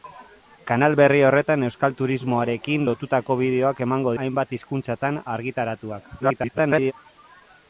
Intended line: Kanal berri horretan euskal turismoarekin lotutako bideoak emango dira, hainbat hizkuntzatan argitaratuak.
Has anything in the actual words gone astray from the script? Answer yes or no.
yes